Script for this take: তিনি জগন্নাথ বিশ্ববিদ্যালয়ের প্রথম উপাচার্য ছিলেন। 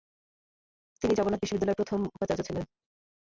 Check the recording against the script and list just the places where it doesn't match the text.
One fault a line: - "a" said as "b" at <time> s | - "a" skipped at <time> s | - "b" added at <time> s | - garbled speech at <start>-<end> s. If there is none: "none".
none